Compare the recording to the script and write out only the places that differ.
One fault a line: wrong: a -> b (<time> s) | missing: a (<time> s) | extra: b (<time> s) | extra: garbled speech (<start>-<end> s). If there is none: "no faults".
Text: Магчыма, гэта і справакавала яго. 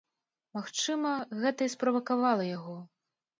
no faults